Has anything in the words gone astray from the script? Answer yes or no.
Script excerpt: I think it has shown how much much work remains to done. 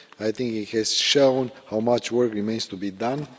yes